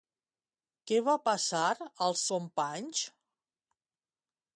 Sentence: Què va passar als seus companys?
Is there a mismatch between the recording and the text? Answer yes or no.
yes